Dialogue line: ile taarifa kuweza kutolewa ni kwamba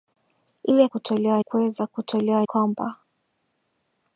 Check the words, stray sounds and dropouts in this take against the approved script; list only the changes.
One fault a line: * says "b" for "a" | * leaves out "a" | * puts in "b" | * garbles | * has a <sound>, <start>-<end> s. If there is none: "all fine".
* says "kutolewa" for "taarifa"
* leaves out "ni"